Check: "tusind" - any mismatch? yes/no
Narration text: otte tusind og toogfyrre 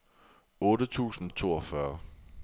no